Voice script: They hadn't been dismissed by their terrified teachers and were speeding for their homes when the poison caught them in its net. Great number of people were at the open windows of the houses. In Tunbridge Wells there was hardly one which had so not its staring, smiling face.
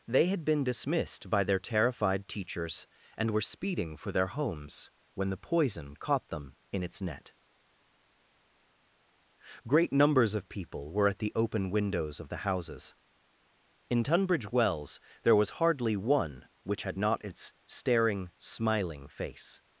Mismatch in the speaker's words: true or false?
true